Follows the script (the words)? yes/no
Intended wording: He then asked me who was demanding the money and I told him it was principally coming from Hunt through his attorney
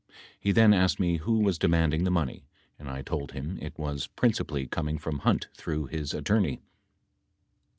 yes